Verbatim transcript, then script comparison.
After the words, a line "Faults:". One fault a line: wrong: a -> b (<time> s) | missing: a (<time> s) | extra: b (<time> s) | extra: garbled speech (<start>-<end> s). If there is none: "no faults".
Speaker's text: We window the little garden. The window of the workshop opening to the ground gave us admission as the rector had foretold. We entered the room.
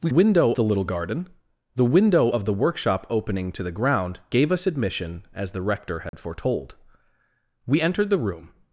We window the little garden. The window of the workshop opening to the ground gave us admission as the rector had foretold. We entered the room.
Faults:
no faults